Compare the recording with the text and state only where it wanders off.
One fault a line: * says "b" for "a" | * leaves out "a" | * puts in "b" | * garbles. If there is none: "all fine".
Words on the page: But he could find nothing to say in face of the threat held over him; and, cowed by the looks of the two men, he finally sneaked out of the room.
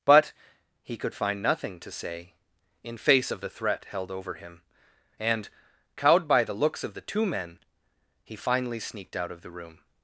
all fine